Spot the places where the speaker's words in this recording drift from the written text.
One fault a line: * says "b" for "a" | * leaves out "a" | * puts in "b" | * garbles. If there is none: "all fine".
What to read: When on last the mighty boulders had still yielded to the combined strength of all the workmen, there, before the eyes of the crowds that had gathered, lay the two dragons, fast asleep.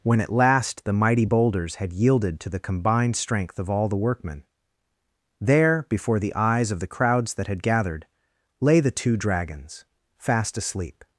* says "at" for "on"
* leaves out "still"